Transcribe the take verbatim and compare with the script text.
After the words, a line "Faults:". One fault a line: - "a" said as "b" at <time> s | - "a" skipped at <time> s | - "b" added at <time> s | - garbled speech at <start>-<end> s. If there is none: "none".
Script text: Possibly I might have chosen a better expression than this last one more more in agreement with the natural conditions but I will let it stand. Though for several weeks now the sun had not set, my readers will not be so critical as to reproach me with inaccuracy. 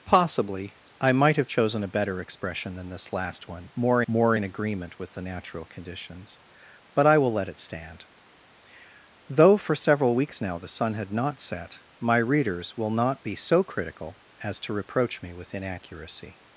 Possibly I might have chosen a better expression than this last one more more in agreement with the natural conditions but I will let it stand. Though for several weeks now the sun had not set, my readers will not be so critical as to reproach me with inaccuracy.
Faults:
none